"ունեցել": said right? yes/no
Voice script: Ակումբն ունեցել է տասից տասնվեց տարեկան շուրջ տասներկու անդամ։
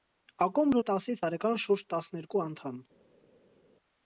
no